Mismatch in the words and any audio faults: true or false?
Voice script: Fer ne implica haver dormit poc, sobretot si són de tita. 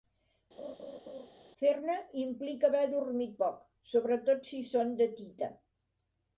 true